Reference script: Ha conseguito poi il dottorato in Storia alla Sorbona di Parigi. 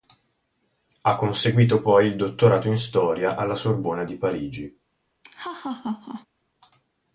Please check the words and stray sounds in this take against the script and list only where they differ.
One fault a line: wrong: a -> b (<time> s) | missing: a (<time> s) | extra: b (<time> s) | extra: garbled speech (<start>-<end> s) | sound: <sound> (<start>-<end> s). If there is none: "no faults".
sound: laugh (5.2-6.3 s)